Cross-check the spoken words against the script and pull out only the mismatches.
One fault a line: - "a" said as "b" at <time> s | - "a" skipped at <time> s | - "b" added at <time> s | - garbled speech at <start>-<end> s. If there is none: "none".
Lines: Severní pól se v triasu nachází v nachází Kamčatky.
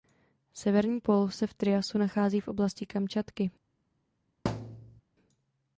- "nachází" said as "oblasti" at 2.5 s